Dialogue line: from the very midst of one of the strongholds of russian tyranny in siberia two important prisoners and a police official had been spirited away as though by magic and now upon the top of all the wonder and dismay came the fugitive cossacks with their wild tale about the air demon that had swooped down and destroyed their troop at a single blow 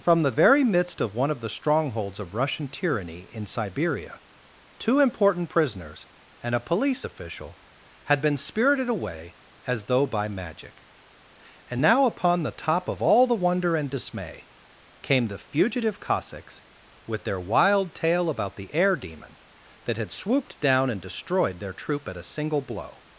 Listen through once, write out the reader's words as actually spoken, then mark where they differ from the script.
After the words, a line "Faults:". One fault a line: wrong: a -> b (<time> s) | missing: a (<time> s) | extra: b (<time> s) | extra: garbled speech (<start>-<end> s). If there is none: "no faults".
from the very midst of one of the strongholds of russian tyranny in siberia two important prisoners and a police official had been spirited away as though by magic and now upon the top of all the wonder and dismay came the fugitive cossacks with their wild tale about the air demon that had swooped down and destroyed their troop at a single blow
Faults:
no faults